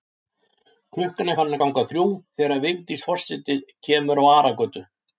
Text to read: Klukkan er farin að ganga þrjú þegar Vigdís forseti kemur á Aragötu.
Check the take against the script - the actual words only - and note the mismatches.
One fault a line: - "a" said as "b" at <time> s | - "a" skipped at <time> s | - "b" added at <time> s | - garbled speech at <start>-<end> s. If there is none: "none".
none